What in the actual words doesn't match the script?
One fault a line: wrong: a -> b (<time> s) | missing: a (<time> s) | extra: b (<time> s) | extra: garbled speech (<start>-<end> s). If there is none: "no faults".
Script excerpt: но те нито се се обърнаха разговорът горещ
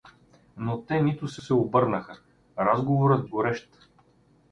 no faults